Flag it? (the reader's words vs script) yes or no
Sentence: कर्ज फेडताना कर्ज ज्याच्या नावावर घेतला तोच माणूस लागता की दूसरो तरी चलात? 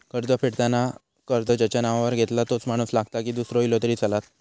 yes